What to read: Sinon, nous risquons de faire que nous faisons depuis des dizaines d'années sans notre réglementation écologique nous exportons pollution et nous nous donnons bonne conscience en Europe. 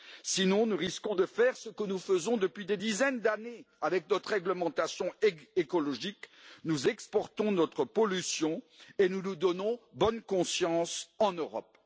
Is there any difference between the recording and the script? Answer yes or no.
yes